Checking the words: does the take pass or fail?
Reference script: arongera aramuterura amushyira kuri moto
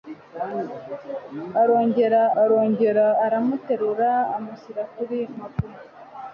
fail